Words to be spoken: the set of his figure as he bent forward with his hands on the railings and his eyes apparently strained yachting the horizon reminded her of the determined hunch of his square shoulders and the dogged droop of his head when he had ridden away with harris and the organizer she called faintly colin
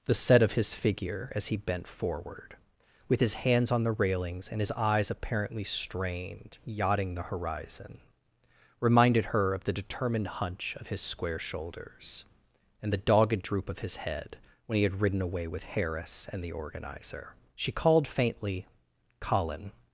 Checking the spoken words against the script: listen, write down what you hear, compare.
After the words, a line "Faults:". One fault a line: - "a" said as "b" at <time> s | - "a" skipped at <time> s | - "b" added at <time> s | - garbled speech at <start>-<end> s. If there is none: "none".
the set of his figure as he bent forward with his hands on the railings and his eyes apparently strained yachting the horizon reminded her of the determined hunch of his square shoulders and the dogged droop of his head when he had ridden away with harris and the organizer she called faintly colin
Faults:
none